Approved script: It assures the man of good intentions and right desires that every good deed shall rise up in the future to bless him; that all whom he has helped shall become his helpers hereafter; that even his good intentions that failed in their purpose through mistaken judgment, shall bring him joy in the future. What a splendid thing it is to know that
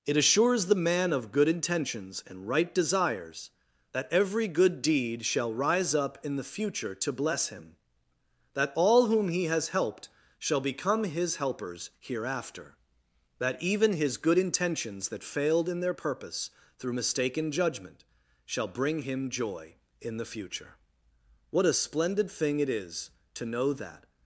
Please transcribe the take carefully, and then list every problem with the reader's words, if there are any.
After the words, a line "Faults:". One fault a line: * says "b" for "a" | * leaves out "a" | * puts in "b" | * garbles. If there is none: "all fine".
It assures the man of good intentions and right desires that every good deed shall rise up in the future to bless him; that all whom he has helped shall become his helpers hereafter; that even his good intentions that failed in their purpose through mistaken judgment, shall bring him joy in the future. What a splendid thing it is to know that
Faults:
all fine